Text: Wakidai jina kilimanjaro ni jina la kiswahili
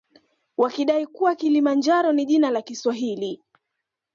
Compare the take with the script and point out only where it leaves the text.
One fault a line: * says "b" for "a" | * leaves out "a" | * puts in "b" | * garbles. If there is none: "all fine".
* says "kuwa" for "jina"